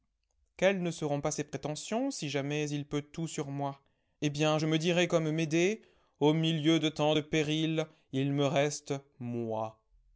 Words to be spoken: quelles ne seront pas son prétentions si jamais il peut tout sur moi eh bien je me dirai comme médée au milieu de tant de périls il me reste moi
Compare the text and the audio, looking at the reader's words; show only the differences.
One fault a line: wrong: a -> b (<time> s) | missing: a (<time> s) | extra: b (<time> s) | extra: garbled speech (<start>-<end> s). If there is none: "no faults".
wrong: son -> ses (1.3 s)